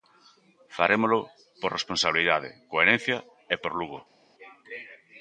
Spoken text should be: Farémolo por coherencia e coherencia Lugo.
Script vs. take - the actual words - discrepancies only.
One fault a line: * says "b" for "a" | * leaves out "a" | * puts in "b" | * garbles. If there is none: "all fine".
* puts in "responsabilidade"
* says "por" for "coherencia"